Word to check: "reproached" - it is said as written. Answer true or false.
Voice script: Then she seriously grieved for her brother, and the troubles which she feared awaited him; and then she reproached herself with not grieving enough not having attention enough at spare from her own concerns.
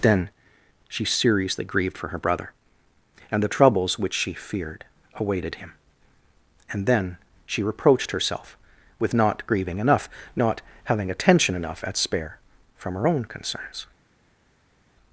true